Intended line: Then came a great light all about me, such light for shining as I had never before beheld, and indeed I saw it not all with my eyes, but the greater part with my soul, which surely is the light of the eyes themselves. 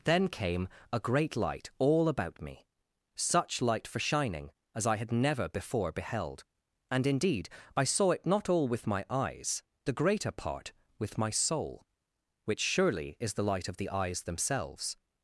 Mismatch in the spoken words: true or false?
true